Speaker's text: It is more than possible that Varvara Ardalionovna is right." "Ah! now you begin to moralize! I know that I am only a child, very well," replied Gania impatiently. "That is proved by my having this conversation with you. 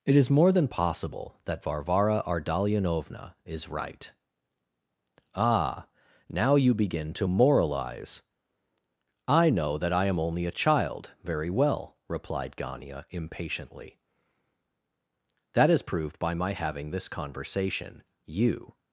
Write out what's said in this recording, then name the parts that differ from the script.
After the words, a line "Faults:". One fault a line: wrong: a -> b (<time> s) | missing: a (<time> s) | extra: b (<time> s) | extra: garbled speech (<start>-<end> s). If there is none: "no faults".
It is more than possible that Varvara Ardalionovna is right." "Ah! now you begin to moralize! I know that I am only a child, very well," replied Gania impatiently. "That is proved by my having this conversation you.
Faults:
missing: with (18.0 s)